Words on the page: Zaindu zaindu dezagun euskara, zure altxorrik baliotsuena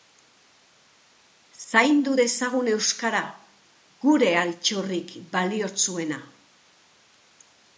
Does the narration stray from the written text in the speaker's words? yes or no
yes